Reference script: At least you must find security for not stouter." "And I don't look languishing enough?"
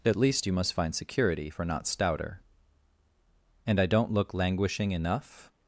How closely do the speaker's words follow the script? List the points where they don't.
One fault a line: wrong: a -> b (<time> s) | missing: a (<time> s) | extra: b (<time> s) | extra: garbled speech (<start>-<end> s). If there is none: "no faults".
no faults